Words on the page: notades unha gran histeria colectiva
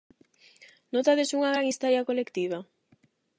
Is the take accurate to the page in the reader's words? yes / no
yes